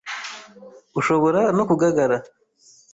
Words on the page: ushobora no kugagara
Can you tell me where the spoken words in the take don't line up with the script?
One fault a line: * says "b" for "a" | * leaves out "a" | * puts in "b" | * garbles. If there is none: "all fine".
all fine